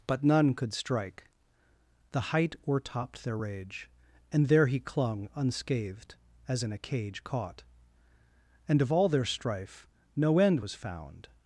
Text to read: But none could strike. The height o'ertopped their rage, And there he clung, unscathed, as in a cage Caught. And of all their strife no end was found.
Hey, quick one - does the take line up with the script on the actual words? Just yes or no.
yes